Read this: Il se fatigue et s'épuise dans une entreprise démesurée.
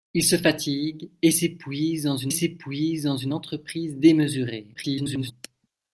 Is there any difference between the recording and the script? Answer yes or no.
yes